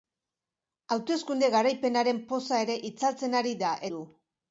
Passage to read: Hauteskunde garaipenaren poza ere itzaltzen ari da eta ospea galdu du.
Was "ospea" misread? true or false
true